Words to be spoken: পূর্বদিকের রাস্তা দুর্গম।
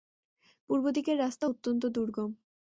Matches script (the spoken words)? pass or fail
fail